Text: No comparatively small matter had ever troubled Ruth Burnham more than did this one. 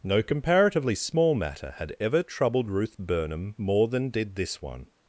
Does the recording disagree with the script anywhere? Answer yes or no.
no